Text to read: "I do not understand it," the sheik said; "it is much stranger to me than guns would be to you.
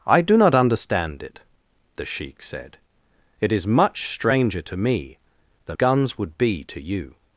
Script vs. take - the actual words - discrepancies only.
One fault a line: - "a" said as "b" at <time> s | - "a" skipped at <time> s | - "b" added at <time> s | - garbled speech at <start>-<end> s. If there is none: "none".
none